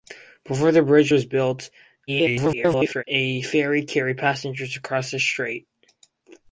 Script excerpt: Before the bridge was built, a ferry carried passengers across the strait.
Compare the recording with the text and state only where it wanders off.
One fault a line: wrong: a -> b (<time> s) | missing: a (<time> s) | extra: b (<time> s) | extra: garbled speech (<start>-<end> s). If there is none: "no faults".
extra: garbled speech (2.1-3.0 s)